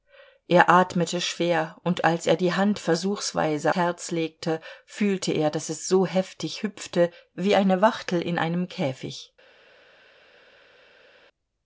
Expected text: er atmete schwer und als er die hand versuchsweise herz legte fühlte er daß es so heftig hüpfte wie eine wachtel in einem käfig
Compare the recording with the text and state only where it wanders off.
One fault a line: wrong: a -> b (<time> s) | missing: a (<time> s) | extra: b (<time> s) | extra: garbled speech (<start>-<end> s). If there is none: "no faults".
no faults